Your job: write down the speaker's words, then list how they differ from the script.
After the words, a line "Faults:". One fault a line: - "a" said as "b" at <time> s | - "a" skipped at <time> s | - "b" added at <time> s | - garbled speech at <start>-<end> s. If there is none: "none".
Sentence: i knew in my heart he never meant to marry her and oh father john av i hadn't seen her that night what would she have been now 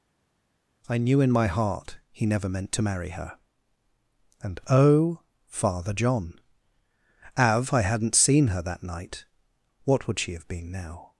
i knew in my heart he never meant to marry her and oh father john av i hadn't seen her that night what would she have been now
Faults:
none